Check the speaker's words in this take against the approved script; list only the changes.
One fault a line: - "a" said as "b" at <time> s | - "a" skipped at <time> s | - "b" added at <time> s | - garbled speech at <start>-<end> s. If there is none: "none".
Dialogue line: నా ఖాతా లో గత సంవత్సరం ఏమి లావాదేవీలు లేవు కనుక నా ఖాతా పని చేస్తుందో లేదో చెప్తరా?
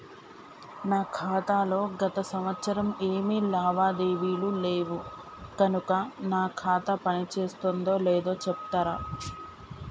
none